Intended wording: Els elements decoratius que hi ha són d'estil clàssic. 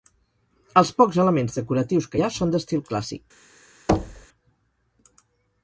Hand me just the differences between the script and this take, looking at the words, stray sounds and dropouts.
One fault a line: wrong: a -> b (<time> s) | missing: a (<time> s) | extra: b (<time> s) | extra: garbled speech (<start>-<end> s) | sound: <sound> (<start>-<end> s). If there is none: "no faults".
extra: pocs (1.0 s)
sound: thud (3.9-4.3 s)